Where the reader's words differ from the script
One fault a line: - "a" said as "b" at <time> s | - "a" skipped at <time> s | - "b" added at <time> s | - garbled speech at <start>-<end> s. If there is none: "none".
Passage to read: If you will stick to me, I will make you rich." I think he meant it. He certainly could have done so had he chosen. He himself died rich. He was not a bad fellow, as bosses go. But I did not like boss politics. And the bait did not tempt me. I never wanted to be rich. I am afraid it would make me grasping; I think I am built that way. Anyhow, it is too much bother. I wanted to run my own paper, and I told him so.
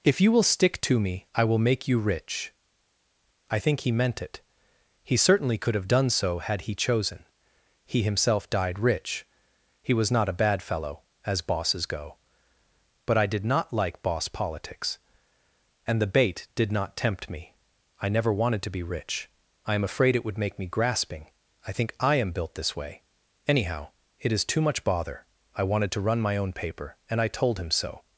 - "that" said as "this" at 22.5 s